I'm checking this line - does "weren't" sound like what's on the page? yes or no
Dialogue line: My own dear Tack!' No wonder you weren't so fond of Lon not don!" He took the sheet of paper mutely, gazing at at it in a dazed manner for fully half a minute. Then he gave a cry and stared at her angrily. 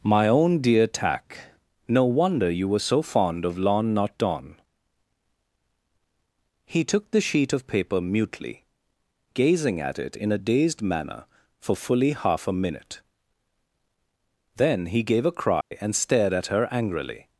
no